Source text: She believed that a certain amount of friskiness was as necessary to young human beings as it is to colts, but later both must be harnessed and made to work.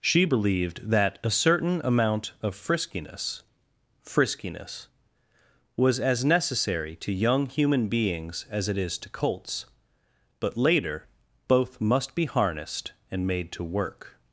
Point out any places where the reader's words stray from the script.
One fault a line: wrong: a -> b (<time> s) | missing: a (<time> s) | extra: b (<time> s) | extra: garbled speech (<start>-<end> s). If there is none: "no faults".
extra: friskiness (4.0 s)